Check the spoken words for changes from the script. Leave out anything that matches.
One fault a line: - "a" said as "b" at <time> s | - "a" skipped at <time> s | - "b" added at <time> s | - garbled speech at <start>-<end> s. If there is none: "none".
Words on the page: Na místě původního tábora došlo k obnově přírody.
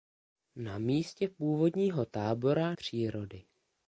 - "došlo k obnově" skipped at 2.8 s